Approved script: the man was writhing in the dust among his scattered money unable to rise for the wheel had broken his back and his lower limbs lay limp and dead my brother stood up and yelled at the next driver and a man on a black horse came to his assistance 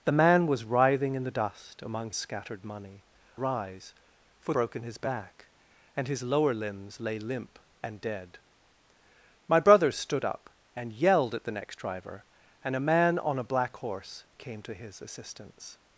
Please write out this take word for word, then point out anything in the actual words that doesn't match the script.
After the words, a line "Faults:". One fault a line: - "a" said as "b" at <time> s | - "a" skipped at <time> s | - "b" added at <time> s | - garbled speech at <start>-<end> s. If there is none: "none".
the man was writhing in the dust among scattered money rise for broken his back and his lower limbs lay limp and dead my brother stood up and yelled at the next driver and a man on a black horse came to his assistance
Faults:
- "his" skipped at 2.1 s
- "unable to" skipped at 3.0 s
- "the wheel had" skipped at 4.5 s